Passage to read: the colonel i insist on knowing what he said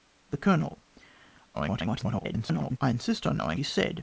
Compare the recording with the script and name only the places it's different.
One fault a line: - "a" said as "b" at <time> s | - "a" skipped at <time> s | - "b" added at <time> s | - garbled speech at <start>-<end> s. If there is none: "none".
- garbled speech at 1.5-2.8 s
- "what" skipped at 3.6 s